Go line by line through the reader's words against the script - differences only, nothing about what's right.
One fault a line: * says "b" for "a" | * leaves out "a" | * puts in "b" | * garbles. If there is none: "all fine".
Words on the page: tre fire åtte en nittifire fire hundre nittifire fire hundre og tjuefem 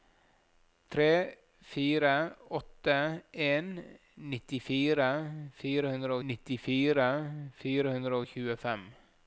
all fine